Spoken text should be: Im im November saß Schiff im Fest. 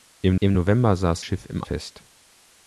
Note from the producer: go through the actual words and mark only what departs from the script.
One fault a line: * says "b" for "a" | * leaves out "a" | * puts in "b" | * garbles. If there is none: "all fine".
all fine